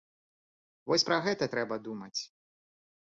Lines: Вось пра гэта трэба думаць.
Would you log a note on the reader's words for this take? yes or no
no